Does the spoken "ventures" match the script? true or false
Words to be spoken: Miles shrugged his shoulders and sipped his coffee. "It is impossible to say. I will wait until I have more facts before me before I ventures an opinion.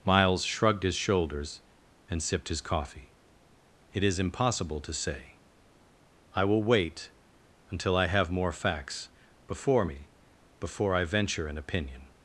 false